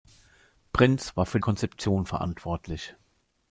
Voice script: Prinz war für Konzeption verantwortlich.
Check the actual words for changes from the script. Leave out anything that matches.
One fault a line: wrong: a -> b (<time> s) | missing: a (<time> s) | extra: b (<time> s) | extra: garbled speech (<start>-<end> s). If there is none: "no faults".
no faults